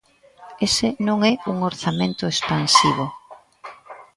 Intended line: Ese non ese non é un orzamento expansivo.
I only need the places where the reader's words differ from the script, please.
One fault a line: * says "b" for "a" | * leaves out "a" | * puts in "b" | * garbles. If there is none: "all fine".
* leaves out "ese non"